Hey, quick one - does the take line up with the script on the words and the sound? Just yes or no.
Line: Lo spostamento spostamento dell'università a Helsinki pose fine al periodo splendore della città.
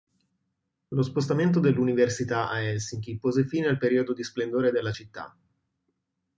no